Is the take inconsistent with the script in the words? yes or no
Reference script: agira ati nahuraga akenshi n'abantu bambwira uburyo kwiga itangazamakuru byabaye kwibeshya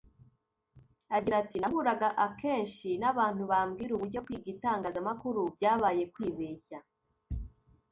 no